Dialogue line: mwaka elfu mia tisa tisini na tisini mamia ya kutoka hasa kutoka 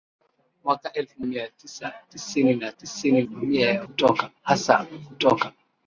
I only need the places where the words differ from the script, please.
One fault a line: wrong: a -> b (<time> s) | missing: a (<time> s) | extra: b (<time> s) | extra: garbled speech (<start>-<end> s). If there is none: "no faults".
no faults